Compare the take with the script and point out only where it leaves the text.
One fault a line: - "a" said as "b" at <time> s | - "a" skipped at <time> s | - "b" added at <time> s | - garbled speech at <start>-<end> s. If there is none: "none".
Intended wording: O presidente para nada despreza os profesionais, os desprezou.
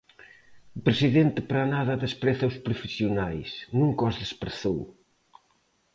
- "nunca" added at 3.8 s